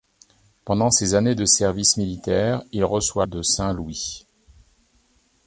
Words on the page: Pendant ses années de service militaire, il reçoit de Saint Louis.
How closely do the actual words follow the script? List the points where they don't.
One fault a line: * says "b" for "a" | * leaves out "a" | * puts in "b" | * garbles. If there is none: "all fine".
all fine